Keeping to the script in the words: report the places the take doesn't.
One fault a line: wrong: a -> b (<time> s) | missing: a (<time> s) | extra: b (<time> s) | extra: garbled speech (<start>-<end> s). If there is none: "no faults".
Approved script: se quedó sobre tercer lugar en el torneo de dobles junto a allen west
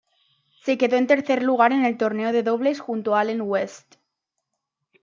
wrong: sobre -> en (0.9 s)